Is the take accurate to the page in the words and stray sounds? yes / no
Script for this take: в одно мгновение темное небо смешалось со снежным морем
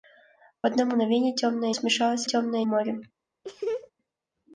no